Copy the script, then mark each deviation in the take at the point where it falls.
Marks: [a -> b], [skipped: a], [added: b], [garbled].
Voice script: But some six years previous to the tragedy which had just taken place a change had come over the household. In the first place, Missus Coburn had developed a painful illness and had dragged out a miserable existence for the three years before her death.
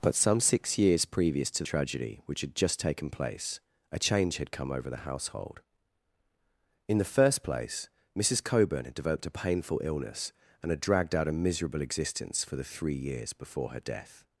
But some six years previous to [skipped: the] tragedy which had just taken place a change had come over the household. In the first place, Missus Coburn had developed a painful illness and had dragged out a miserable existence for the three years before her death.